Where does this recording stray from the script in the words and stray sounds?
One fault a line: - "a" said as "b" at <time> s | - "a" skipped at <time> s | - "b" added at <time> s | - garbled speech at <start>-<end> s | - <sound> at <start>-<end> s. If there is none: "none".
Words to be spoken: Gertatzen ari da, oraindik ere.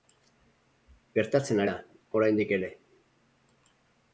- "ari" skipped at 1.6 s